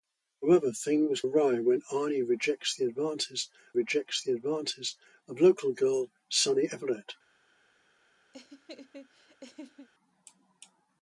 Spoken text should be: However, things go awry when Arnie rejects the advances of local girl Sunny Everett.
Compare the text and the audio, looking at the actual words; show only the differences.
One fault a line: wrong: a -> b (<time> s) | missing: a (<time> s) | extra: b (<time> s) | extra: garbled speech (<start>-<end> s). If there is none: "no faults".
missing: go (1.2 s)
extra: rejects the advances (3.7 s)